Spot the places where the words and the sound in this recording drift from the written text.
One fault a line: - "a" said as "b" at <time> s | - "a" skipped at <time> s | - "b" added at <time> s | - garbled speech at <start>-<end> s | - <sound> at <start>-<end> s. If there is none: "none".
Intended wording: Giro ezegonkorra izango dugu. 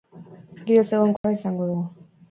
- dropout at 1.2-1.2 s